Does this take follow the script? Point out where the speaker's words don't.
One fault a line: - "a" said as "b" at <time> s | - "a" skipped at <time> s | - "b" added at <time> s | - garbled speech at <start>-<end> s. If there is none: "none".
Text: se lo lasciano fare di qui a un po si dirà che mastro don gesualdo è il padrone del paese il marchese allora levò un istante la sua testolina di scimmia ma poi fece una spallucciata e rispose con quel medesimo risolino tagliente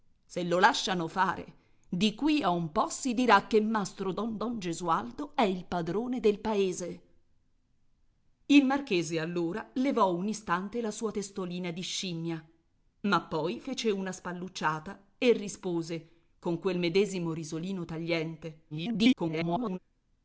- "don" added at 4.4 s
- garbled speech at 18.7-19.8 s